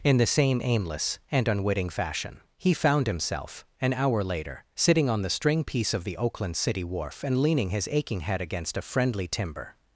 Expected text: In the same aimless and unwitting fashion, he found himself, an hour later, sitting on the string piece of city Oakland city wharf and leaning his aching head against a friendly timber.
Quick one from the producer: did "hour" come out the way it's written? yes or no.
yes